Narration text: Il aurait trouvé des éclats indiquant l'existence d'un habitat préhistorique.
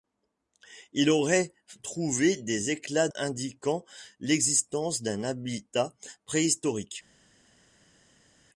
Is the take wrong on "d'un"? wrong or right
right